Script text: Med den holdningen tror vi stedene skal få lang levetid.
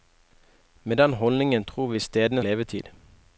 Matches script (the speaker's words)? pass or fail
fail